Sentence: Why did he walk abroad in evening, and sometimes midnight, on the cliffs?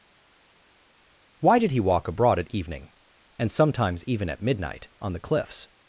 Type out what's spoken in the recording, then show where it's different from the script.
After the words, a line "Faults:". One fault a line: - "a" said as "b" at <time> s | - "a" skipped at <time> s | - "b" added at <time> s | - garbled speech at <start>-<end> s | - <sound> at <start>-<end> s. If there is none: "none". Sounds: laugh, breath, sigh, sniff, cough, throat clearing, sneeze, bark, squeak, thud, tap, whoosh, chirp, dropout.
Why did he walk abroad at evening, and sometimes even at midnight, on the cliffs?
Faults:
- "in" said as "at" at 2.4 s
- "even at" added at 4.0 s